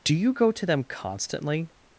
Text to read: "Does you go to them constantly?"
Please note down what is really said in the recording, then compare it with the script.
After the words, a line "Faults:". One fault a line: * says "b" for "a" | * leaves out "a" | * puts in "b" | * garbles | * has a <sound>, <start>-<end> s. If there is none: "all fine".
"Do you go to them constantly?"
Faults:
* says "Do" for "Does"